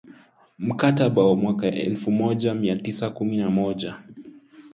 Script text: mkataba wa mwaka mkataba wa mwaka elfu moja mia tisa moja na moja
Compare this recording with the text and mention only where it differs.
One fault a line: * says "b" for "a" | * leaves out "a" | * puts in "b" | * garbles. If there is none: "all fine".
* leaves out "mkataba wa mwaka"
* says "kumi" for "moja"